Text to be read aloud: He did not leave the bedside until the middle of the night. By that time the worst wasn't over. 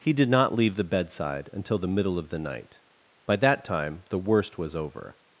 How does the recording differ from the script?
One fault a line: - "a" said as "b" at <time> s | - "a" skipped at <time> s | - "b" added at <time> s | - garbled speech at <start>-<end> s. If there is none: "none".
- "wasn't" said as "was" at 4.6 s